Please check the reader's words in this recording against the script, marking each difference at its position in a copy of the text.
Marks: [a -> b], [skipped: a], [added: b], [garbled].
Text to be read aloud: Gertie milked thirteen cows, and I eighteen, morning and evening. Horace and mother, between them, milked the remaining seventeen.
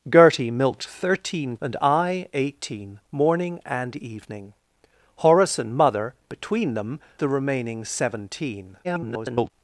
Gertie milked thirteen [skipped: cows,] and I eighteen, morning and evening. Horace and mother, between them, [skipped: milked] the remaining seventeen. [garbled]